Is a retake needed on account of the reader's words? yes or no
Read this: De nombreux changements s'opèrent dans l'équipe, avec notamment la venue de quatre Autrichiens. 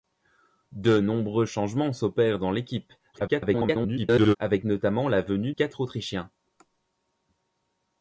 yes